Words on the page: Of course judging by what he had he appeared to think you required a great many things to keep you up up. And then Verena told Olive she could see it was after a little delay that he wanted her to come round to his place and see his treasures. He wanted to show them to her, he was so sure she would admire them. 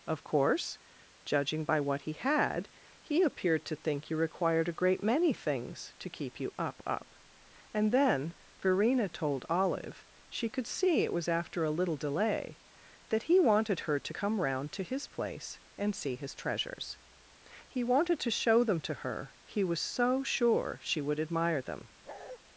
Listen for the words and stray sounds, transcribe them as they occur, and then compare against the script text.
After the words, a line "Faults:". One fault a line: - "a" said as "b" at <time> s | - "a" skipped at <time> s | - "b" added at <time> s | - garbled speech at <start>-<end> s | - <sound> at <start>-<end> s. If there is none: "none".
Of course judging by what he had he appeared to think you required a great many things to keep you up up. And then Verena told Olive she could see it was after a little delay that he wanted her to come round to his place and see his treasures. He wanted to show them to her, he was so sure she would admire them.
Faults:
- bark at 22.0-22.4 s